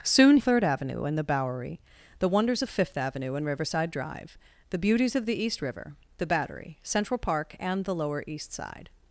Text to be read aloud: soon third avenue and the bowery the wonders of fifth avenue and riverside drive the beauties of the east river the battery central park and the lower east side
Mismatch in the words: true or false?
false